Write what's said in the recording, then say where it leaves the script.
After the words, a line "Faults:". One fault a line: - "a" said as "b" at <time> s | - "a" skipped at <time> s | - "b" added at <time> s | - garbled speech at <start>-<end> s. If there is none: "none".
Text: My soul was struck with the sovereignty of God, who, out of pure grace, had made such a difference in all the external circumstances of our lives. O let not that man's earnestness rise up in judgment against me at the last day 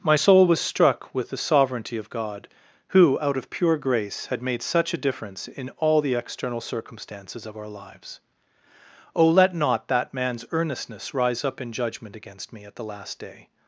My soul was struck with the sovereignty of God, who, out of pure grace, had made such a difference in all the external circumstances of our lives. O let not that man's earnestness rise up in judgment against me at the last day
Faults:
none